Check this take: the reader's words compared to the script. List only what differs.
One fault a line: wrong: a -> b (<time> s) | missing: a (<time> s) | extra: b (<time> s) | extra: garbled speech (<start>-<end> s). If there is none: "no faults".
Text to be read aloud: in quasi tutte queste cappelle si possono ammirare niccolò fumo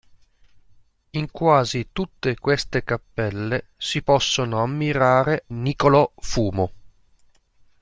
no faults